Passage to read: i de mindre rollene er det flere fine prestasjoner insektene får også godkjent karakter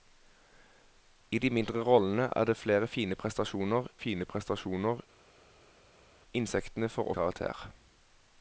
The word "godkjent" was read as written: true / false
false